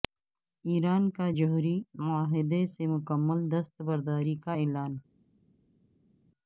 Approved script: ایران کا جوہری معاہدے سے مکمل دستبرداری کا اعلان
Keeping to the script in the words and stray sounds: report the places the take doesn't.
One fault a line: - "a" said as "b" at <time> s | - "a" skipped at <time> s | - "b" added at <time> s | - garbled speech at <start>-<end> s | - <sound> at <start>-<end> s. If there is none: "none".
none